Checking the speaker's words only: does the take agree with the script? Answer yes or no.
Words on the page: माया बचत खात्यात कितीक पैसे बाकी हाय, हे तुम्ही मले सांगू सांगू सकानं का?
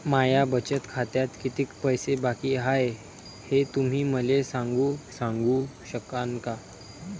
yes